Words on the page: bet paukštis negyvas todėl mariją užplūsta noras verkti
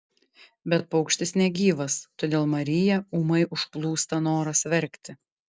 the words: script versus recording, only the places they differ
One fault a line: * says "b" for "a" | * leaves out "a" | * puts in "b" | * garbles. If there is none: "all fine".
* puts in "ūmai"